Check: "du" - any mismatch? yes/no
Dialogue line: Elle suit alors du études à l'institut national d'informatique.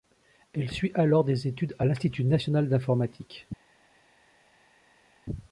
yes